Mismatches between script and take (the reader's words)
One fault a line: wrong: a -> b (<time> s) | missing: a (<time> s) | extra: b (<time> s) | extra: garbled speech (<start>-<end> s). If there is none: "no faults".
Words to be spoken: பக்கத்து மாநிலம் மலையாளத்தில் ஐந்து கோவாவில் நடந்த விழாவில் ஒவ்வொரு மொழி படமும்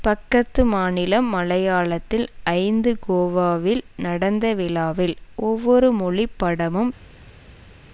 no faults